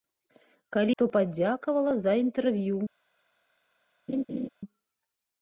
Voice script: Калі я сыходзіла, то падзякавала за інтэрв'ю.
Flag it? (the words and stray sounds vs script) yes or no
yes